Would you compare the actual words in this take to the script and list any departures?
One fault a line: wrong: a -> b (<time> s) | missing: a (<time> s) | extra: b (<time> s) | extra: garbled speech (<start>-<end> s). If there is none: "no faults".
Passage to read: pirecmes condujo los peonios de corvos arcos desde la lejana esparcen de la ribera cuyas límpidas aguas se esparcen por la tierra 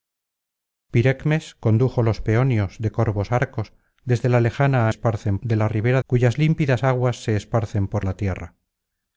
no faults